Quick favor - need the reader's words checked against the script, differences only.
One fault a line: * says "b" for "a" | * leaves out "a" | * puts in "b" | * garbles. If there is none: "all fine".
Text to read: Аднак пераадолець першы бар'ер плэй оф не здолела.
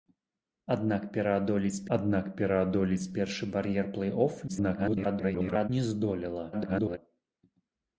* puts in "аднак пераадолець"
* garbles
* garbles